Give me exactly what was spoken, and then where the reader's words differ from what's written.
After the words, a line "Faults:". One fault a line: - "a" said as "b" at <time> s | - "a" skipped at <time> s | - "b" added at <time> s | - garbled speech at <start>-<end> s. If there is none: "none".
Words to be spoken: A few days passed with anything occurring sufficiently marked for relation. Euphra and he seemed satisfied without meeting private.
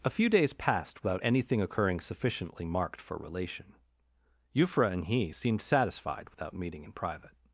A few days passed without anything occurring sufficiently marked for relation. Euphra and he seemed satisfied without meeting in private.
Faults:
- "with" said as "without" at 1.0 s
- "in" added at 6.8 s